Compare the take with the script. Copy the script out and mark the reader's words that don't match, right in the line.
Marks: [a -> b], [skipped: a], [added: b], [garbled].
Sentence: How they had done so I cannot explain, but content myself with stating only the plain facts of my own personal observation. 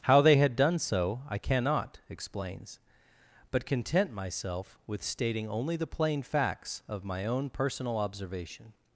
How they had done so I cannot [explain, -> explains] but content myself with stating only the plain facts of my own personal observation.